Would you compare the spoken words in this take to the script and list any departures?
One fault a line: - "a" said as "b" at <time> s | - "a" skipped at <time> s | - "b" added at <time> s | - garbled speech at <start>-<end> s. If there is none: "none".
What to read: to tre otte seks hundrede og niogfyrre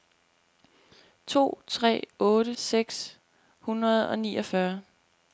none